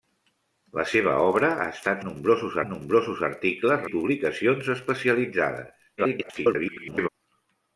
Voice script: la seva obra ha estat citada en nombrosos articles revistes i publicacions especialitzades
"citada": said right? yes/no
no